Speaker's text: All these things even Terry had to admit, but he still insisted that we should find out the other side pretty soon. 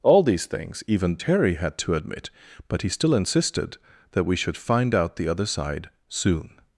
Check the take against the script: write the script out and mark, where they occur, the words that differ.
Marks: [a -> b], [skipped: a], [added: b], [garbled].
All these things even Terry had to admit, but he still insisted that we should find out the other side [skipped: pretty] soon.